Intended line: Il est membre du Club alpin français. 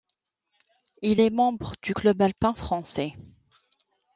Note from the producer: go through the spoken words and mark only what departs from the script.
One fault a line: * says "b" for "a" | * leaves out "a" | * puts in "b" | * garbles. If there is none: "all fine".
all fine